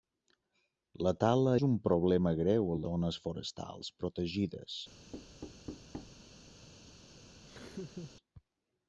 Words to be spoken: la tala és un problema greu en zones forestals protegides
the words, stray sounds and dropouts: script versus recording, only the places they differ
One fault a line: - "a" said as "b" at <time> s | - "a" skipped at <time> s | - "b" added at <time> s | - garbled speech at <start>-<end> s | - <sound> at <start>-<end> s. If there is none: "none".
- thud at 5.1-6.2 s
- laugh at 7.4-8.2 s